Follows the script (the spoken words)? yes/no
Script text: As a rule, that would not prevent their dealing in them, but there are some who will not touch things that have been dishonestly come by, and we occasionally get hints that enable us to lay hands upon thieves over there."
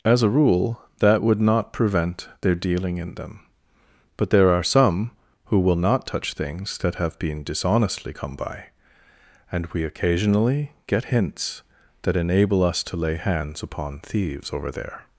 yes